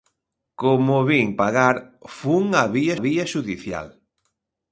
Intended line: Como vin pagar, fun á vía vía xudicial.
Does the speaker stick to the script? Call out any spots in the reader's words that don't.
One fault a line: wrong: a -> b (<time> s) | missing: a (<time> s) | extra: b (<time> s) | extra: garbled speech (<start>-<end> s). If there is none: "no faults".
no faults